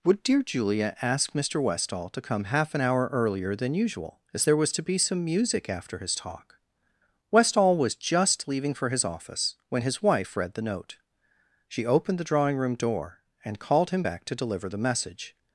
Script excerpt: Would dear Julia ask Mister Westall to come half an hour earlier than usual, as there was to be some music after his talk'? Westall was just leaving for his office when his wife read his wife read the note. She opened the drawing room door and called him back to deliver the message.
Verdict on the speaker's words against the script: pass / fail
fail